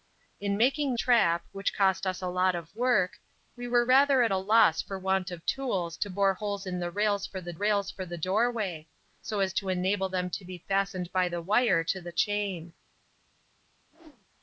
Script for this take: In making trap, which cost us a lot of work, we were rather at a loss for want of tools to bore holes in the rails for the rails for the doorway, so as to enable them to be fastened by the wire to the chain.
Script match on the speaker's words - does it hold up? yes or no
yes